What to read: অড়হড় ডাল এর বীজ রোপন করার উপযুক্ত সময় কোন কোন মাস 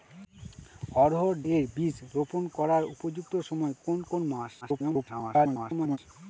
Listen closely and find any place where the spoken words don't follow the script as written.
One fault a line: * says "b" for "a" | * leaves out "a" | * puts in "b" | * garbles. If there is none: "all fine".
* leaves out "ডাল"
* garbles